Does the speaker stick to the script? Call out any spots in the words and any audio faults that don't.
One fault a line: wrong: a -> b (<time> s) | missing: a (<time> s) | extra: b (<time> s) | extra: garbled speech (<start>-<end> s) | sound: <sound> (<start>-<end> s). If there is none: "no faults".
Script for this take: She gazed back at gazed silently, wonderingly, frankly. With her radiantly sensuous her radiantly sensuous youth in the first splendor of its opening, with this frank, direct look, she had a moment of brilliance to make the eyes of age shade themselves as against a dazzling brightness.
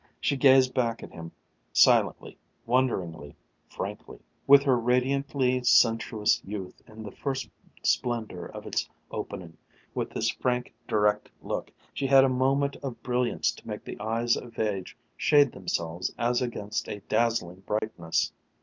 wrong: gazed -> him (1.1 s)
missing: her radiantly sensuous (6.4 s)
sound: dropout (17.8-17.8 s)